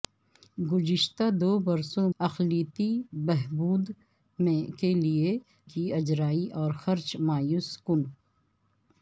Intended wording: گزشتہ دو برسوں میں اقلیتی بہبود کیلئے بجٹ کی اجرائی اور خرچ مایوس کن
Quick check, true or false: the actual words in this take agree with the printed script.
false